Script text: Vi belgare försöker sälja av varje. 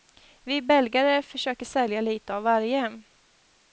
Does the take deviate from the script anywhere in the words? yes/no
yes